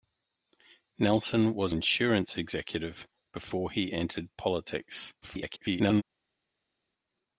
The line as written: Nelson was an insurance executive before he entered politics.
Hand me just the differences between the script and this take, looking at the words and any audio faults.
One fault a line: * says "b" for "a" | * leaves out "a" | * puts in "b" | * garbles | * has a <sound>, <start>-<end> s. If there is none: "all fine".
* leaves out "an"
* garbles